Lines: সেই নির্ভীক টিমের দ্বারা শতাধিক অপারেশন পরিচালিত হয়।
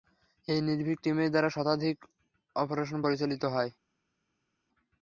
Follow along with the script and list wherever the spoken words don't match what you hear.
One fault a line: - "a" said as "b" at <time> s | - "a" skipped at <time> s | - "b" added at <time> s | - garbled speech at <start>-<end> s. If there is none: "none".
- "সেই" said as "এই" at 0.5 s